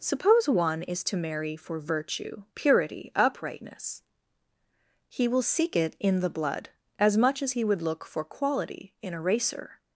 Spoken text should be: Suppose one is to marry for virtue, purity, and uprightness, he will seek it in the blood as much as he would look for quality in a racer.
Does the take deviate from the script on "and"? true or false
true